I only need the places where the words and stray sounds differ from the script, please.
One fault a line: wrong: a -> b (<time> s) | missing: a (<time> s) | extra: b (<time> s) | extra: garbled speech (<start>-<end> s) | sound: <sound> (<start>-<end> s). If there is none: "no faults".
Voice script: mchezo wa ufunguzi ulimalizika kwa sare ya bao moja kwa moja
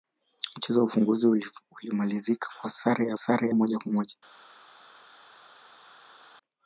wrong: bao -> sare (3.1 s)